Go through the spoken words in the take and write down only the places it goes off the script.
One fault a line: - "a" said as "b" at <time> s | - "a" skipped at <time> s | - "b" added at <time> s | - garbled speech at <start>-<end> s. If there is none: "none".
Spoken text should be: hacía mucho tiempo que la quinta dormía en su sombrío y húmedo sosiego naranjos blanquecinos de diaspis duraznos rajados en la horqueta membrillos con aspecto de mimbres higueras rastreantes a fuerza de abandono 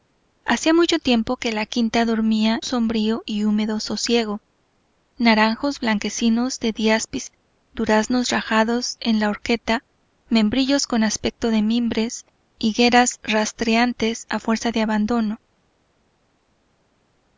- "en su" skipped at 2.6 s